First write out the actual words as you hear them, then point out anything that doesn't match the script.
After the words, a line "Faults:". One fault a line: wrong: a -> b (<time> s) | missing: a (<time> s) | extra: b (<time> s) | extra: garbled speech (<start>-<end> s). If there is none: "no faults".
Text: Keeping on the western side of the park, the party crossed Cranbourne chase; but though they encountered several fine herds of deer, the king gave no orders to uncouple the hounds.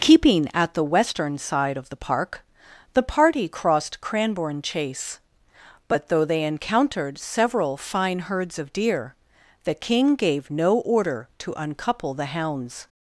Keeping at the western side of the park, the party crossed Cranbourne chase; but though they encountered several fine herds of deer, the king gave no order to uncouple the hounds.
Faults:
wrong: on -> at (0.5 s)
wrong: orders -> order (10.8 s)